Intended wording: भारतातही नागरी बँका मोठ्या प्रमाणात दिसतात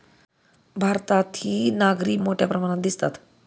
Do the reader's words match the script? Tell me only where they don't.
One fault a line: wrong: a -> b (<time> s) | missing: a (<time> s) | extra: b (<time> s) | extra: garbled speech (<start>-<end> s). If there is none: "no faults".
missing: बँका (2.2 s)